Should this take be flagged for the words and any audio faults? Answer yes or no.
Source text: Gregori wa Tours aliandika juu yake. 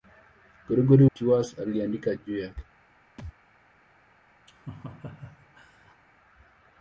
yes